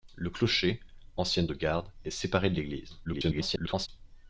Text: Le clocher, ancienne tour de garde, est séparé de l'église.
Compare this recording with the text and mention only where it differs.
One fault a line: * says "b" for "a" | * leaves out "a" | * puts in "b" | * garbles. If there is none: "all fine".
* leaves out "tour"
* garbles